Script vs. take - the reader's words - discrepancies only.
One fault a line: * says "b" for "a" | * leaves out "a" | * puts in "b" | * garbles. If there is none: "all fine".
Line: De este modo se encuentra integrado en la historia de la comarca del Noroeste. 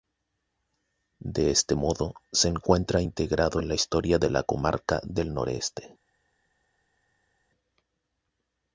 all fine